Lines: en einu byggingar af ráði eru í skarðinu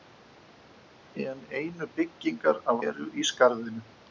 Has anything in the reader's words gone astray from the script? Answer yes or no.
yes